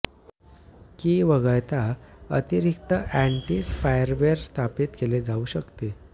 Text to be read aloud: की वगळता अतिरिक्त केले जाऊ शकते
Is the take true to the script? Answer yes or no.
no